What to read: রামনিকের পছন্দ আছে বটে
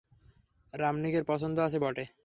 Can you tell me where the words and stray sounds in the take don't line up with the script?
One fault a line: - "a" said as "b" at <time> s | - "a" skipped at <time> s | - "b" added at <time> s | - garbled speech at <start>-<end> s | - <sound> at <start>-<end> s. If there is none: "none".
none